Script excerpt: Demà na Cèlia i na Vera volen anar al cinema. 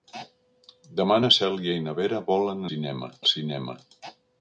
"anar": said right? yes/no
no